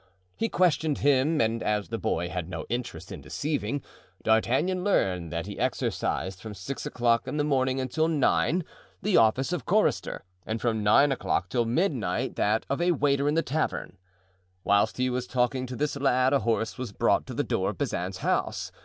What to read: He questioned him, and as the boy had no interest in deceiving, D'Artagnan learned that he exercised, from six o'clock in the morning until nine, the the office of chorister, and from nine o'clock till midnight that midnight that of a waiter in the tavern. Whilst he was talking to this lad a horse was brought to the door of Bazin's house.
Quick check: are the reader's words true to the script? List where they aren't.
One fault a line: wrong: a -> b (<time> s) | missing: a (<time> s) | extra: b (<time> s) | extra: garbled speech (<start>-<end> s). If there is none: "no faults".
missing: the (9.2 s)
missing: midnight that (12.6 s)